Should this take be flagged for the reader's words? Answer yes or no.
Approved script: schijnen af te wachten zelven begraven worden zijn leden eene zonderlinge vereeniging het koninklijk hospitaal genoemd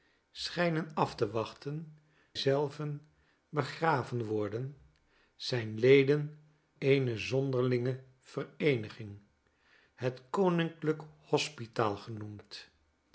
no